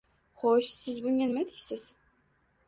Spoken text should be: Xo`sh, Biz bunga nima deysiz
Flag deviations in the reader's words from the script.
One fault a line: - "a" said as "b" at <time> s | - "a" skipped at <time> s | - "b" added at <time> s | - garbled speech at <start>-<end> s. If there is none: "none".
- "Biz" said as "Siz" at 0.8 s